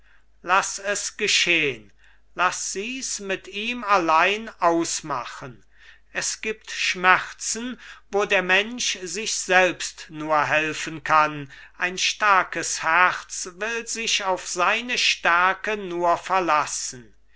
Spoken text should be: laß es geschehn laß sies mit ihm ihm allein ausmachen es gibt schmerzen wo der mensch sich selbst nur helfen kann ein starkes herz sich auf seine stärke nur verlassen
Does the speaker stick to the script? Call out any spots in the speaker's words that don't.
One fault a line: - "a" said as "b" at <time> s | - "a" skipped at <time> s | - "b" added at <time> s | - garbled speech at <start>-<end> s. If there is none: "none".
- "ihm" skipped at 3.9 s
- "will" added at 13.6 s